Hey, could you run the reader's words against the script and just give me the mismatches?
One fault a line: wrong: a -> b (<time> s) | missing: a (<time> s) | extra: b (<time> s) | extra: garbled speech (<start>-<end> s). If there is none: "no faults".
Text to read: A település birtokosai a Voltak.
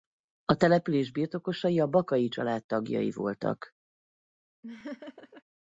extra: Bakay család tagjai (1.9 s)